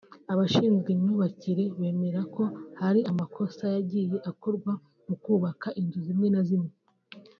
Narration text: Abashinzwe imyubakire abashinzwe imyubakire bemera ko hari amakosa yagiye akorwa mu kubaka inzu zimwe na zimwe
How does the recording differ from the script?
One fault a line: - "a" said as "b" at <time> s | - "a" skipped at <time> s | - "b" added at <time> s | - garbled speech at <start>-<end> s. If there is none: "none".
- "abashinzwe imyubakire" skipped at 1.6 s